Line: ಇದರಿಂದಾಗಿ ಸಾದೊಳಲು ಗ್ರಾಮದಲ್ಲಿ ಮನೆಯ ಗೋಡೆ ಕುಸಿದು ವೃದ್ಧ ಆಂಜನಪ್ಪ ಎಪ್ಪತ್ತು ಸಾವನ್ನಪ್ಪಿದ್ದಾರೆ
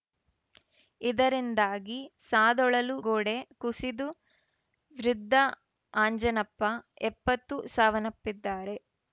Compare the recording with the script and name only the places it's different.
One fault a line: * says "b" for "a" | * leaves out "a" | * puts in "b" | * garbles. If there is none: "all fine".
* leaves out "ಗ್ರಾಮದಲ್ಲಿ ಮನೆಯ"